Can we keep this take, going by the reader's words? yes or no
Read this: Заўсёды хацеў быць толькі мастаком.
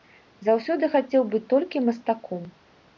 yes